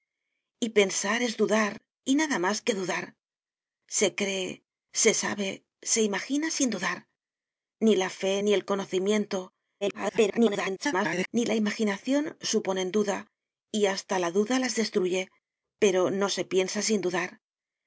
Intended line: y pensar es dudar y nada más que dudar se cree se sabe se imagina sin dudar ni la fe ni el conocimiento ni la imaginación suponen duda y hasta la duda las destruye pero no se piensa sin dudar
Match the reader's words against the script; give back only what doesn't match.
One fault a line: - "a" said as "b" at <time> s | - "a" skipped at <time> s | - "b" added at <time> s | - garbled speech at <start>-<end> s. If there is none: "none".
- garbled speech at 9.8-11.3 s